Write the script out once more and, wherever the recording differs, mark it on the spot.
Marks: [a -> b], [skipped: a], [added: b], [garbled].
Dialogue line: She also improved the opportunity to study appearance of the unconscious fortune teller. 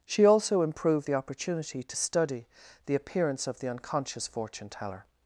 She also improved the opportunity to study [added: the] appearance of the unconscious fortune teller.